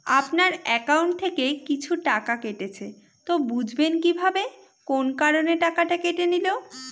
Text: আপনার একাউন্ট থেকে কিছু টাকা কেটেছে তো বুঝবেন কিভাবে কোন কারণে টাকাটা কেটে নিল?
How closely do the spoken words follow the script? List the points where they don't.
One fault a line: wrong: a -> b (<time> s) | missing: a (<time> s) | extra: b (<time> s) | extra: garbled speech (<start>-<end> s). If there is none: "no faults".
no faults